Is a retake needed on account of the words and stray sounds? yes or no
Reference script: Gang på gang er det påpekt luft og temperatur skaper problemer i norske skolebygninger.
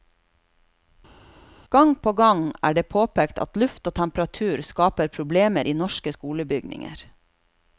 yes